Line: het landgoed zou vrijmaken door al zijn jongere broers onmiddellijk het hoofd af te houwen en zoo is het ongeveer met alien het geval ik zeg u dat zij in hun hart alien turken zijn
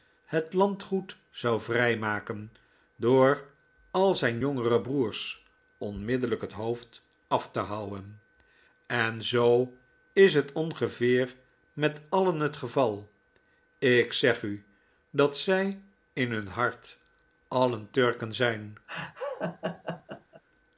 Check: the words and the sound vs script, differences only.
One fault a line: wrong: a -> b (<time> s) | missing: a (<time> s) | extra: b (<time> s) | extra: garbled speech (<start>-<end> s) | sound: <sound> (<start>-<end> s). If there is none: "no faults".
sound: laugh (18.9-20.4 s)